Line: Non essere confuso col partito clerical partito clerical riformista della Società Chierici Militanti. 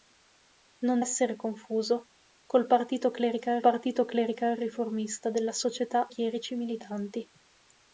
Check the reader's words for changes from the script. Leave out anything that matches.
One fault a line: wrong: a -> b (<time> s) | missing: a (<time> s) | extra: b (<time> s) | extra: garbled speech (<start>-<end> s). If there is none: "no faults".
no faults